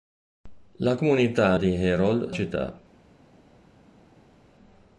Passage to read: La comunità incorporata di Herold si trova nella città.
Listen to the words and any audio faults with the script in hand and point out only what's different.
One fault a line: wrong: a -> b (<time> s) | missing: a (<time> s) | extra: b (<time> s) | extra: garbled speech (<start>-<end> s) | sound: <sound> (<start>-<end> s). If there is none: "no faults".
missing: incorporata (1.6 s)
missing: si trova nella (2.3 s)